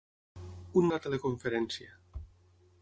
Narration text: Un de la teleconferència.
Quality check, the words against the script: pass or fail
pass